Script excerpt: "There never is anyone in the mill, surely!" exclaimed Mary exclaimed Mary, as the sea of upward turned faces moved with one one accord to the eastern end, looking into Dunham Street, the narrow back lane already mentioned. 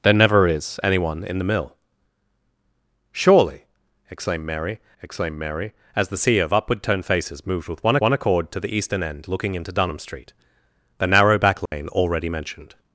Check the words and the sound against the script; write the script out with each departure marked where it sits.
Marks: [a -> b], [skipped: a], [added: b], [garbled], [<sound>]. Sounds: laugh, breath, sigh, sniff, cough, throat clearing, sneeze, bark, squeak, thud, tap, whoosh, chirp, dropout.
"There never is anyone in the mill, surely!" exclaimed Mary exclaimed Mary, as the sea of upward turned faces moved with one one accord to the eastern end, looking into Dunham Street, the narrow back lane [dropout] already mentioned.